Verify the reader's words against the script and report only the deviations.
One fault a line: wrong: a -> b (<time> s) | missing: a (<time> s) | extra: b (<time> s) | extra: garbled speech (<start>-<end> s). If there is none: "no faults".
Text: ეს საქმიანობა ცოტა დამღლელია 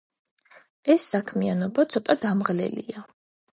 no faults